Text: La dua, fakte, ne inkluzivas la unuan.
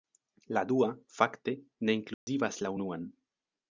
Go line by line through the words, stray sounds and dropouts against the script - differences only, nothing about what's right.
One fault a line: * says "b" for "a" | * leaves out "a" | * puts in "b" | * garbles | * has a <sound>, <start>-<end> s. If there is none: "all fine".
* has a dropout, 2.1-2.3 s